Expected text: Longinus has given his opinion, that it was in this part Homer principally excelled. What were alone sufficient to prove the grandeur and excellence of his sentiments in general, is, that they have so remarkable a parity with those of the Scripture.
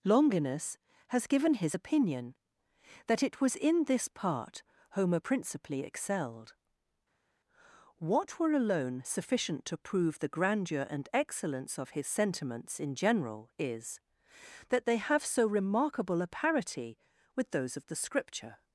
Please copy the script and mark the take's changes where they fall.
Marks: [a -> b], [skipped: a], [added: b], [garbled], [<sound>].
Longinus has given his opinion, that it was in this part Homer principally excelled. What were alone sufficient to prove the grandeur and excellence of his sentiments in general, is, that they have so remarkable a parity with those of the Scripture.